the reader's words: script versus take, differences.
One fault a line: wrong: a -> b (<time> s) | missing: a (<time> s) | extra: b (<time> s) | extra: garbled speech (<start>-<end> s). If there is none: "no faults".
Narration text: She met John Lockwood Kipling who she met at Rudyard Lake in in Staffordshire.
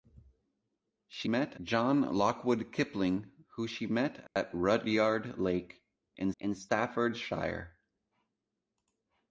no faults